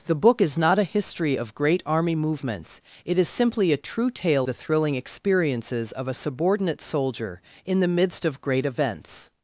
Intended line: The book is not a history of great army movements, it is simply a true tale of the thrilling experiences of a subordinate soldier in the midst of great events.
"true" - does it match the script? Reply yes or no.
yes